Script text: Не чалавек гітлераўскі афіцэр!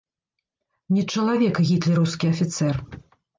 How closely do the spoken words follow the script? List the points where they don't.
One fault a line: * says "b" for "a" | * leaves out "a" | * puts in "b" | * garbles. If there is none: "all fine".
all fine